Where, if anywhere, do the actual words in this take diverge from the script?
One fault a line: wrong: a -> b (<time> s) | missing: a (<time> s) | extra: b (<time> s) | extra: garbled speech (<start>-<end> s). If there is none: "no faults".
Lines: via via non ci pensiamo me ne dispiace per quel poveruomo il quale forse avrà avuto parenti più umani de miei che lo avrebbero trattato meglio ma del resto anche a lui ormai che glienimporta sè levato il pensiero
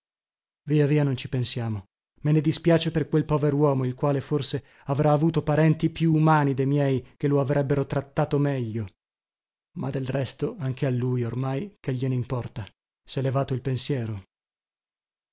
no faults